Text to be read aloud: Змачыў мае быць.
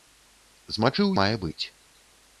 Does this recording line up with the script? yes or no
yes